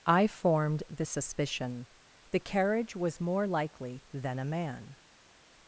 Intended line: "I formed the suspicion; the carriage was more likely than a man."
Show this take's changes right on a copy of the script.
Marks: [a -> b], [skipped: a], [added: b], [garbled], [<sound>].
"I formed the suspicion; the carriage was more likely than a man."